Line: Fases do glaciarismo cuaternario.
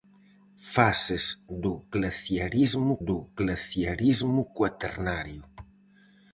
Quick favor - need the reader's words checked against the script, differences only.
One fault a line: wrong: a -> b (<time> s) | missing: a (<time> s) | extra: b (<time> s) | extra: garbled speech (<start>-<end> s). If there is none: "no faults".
extra: do glaciarismo (3.1 s)